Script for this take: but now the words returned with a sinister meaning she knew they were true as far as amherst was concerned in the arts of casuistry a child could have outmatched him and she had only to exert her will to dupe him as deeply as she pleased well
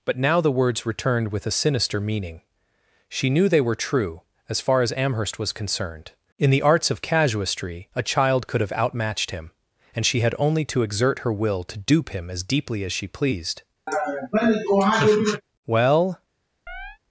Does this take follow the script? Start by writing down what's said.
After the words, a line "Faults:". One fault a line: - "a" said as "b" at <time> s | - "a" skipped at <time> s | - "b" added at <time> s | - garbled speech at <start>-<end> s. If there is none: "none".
but now the words returned with a sinister meaning she knew they were true as far as amherst was concerned in the arts of casuistry a child could have outmatched him and she had only to exert her will to dupe him as deeply as she pleased well
Faults:
none